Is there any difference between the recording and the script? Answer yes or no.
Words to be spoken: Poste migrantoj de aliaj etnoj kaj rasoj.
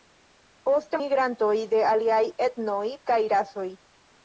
no